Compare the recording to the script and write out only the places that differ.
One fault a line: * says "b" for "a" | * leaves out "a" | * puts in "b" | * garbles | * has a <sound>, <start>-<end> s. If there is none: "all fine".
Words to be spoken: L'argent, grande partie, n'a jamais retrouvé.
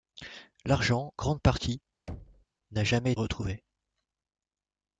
* has a thud, 2.1-2.5 s